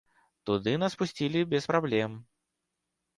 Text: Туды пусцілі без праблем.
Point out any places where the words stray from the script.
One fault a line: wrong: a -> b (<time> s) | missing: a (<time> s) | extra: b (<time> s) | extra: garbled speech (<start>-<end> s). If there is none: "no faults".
extra: нас (0.8 s)